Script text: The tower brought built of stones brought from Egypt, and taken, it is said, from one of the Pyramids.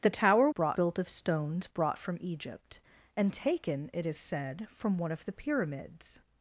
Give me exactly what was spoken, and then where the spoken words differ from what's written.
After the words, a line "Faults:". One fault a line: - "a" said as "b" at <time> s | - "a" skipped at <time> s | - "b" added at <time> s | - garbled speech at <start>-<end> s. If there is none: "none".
The tower brought built of stones brought from Egypt, and taken, it is said, from one of the Pyramids.
Faults:
none